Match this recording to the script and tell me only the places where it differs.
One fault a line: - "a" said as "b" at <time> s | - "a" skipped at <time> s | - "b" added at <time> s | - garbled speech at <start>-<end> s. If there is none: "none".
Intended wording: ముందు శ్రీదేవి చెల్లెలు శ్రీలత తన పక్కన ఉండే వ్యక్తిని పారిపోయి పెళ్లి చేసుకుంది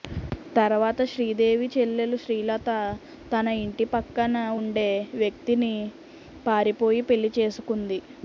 - "ముందు" said as "తర్వాత" at 0.6 s
- "ఇంటి" added at 3.6 s